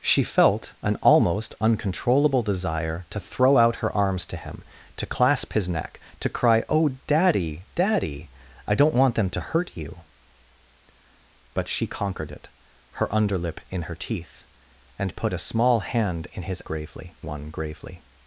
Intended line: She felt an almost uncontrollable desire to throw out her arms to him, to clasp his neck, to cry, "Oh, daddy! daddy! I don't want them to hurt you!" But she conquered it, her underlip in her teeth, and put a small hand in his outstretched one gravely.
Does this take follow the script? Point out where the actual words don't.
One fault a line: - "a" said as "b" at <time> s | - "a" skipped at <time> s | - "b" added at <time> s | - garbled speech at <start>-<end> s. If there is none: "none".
- "outstretched" said as "gravely" at 16.6 s